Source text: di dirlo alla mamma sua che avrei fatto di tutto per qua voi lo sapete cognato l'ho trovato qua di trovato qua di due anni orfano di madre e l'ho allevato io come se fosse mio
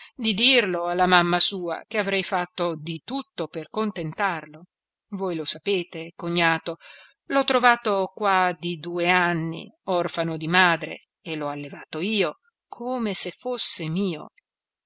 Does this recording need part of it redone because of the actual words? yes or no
yes